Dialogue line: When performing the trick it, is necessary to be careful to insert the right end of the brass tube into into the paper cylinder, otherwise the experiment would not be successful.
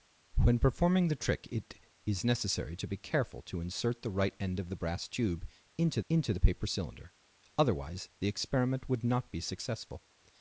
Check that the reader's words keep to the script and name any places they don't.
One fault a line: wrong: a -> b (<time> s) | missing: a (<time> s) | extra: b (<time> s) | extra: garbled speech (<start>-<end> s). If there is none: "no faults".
no faults